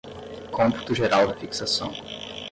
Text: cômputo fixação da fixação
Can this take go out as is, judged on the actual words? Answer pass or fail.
fail